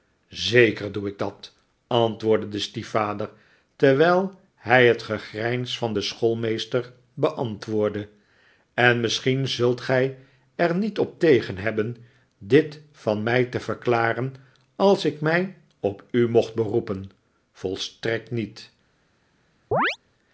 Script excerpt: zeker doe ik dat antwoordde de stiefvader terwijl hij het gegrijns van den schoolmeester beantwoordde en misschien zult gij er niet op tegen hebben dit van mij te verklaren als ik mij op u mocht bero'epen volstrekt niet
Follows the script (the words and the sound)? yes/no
no